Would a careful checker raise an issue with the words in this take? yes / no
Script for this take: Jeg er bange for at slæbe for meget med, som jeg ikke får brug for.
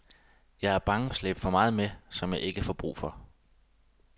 yes